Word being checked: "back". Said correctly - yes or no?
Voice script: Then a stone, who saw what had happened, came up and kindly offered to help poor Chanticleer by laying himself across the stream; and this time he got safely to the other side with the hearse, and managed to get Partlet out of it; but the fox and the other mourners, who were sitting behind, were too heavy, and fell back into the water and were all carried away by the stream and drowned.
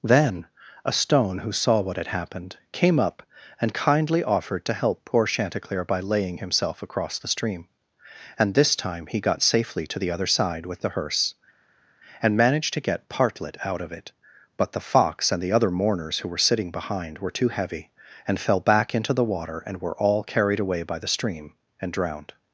yes